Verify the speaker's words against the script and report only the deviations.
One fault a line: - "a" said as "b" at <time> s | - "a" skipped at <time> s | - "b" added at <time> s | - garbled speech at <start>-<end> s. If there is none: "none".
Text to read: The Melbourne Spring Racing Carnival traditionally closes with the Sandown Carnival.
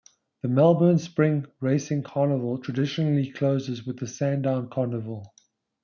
none